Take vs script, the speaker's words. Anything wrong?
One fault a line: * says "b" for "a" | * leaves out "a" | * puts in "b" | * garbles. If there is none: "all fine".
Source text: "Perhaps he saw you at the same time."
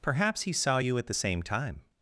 all fine